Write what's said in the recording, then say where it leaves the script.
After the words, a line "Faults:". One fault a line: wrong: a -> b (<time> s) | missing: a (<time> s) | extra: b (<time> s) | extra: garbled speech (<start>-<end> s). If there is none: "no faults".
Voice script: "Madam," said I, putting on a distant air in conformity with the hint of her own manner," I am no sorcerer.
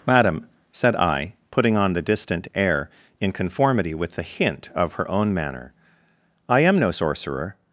"Madam," said I, putting on the distant air in conformity with the hint of her own manner," I am no sorcerer.
Faults:
wrong: a -> the (1.9 s)